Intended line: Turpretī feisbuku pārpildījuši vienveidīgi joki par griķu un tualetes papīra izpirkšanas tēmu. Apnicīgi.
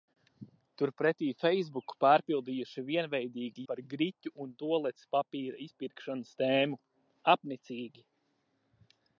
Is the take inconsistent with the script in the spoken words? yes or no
yes